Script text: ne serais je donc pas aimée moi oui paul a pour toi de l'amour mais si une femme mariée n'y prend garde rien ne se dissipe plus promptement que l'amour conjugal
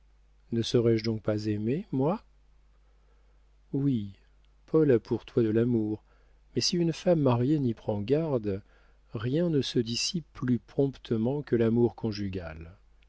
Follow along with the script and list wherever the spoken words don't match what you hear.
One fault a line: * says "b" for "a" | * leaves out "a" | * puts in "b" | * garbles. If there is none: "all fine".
all fine